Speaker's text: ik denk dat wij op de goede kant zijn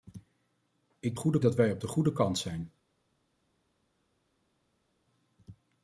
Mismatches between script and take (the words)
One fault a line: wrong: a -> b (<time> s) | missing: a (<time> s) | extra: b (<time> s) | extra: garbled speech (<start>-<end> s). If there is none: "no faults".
wrong: denk -> goede (1.1 s)